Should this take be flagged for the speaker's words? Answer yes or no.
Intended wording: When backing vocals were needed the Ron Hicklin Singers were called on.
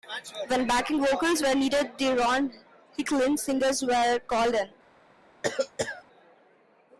yes